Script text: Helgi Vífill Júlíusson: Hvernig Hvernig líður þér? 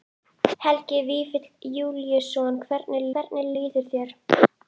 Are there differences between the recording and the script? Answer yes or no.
no